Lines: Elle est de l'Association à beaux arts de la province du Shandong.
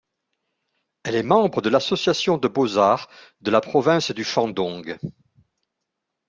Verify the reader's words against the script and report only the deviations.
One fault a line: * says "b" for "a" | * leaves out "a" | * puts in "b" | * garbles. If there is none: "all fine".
* puts in "membre"
* says "de" for "à"